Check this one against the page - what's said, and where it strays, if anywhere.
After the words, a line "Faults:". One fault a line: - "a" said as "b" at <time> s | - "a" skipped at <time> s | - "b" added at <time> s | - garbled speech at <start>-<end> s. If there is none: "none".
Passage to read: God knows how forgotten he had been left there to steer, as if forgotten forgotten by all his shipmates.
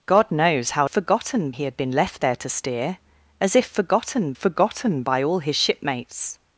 God knows how forgotten he had been left there to steer, as if forgotten forgotten by all his shipmates.
Faults:
none